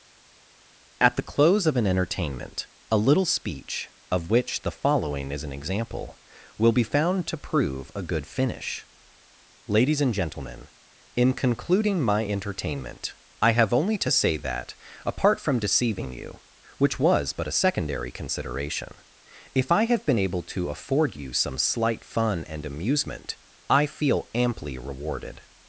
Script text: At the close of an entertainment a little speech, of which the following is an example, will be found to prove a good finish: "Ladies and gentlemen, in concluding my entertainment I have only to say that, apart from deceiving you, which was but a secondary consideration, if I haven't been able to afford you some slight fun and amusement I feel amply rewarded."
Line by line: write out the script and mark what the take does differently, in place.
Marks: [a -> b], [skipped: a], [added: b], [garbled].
At the close of an entertainment a little speech, of which the following is an example, will be found to prove a good finish: "Ladies and gentlemen, in concluding my entertainment I have only to say that, apart from deceiving you, which was but a secondary consideration, if I [haven't -> have] been able to afford you some slight fun and amusement I feel amply rewarded."